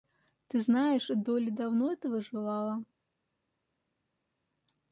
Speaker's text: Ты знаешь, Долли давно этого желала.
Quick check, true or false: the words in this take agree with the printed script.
true